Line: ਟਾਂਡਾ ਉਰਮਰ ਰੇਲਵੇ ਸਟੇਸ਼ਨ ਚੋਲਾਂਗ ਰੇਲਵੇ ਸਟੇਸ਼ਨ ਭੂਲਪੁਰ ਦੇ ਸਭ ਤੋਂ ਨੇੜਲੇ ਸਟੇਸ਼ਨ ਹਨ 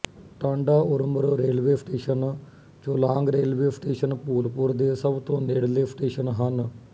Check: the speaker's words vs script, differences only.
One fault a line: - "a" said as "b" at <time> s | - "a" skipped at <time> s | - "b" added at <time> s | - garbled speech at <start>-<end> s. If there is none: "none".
none